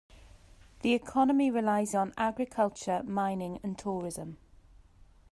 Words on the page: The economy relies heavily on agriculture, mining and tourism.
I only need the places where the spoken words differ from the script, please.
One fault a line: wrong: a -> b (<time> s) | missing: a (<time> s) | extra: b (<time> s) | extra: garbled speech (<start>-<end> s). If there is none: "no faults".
missing: heavily (1.9 s)